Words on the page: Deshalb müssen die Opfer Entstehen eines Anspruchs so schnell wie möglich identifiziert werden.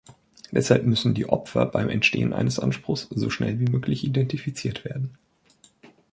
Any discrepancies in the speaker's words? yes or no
yes